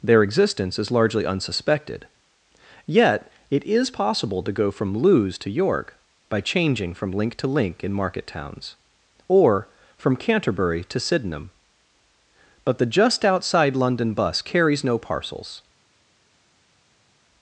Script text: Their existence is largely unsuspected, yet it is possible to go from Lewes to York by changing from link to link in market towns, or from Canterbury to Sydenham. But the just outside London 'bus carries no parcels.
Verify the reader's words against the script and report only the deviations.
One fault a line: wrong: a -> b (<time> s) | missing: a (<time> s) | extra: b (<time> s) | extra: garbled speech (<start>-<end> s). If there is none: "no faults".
no faults